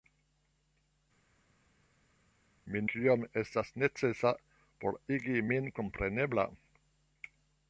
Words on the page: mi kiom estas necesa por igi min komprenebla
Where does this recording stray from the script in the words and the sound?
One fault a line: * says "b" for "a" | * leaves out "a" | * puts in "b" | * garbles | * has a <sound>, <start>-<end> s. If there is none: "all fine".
all fine